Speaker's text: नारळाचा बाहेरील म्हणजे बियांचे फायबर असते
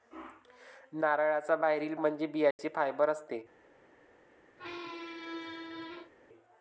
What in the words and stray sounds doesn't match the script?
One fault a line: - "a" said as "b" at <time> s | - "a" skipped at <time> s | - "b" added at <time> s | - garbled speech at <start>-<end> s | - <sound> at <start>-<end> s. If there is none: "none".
- dropout at 2.5-2.6 s
- squeak at 4.6-6.1 s